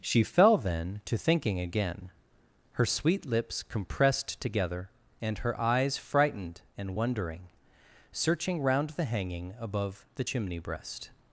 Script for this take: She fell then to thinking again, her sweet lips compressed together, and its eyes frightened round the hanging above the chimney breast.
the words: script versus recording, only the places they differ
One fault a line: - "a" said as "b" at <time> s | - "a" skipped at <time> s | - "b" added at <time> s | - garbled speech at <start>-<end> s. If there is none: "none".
- "its" said as "her" at 5.4 s
- "and wondering searching" added at 6.8 s